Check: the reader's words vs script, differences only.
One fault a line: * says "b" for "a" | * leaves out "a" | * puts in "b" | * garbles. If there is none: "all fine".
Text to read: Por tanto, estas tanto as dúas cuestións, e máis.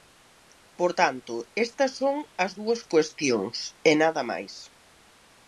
* says "son" for "tanto"
* puts in "nada"